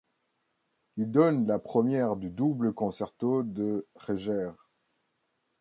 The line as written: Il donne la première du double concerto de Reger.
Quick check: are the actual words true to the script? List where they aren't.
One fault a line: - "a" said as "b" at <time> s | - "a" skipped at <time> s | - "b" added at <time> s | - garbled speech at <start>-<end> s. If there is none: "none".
none